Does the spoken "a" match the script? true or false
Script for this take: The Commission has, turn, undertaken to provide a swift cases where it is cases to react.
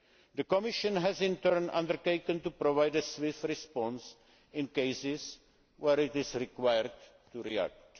true